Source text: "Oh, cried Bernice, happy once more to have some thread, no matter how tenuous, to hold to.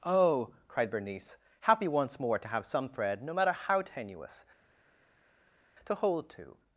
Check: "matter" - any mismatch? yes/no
no